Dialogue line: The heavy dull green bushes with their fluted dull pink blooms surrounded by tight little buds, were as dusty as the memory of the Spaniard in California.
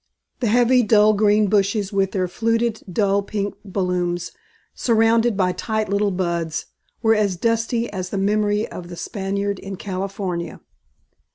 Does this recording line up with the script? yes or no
yes